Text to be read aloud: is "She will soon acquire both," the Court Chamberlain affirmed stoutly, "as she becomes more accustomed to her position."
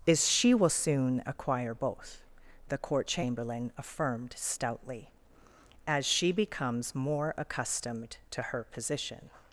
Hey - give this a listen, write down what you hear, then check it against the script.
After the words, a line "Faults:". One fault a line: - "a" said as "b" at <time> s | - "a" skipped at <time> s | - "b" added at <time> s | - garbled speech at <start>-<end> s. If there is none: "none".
is "She will soon acquire both," the Court Chamberlain affirmed stoutly, "as she becomes more accustomed to her position."
Faults:
none